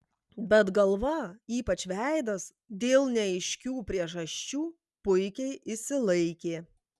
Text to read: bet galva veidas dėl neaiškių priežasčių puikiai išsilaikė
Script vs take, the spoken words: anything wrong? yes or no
yes